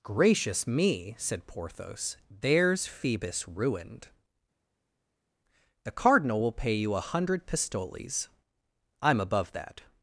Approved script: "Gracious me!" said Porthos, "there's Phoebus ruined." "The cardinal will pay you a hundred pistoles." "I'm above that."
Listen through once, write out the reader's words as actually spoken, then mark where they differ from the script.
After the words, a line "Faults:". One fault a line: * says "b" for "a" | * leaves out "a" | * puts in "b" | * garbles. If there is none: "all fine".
"Gracious me!" said Porthos, "there's Phoebus ruined." "The cardinal will pay you a hundred pistoles." "I'm above that."
Faults:
all fine